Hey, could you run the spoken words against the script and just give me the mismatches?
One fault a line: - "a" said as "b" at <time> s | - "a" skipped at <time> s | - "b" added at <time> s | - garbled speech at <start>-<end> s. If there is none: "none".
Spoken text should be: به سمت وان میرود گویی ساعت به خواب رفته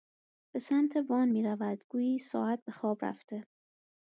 none